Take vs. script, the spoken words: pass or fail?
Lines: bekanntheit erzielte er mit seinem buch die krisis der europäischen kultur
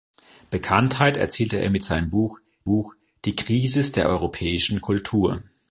fail